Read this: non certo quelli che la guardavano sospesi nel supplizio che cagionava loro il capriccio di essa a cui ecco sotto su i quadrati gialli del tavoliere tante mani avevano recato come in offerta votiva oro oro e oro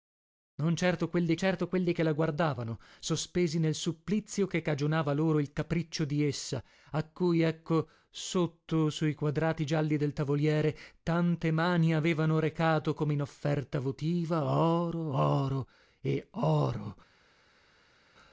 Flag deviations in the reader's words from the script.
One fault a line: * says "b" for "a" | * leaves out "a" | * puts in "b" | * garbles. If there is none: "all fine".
* puts in "certo quelli"